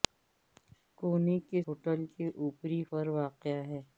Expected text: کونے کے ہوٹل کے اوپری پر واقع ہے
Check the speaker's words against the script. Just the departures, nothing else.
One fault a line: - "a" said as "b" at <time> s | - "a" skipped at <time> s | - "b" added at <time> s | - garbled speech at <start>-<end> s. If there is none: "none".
none